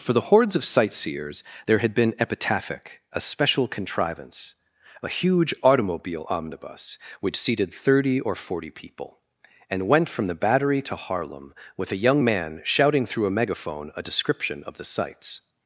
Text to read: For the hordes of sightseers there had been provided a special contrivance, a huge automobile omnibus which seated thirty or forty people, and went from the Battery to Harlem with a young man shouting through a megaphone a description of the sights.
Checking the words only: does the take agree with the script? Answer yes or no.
no